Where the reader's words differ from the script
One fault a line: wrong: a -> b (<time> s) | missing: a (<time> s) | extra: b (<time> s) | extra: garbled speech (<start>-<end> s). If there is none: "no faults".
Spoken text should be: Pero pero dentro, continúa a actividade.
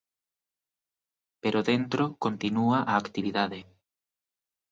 missing: pero (1.6 s)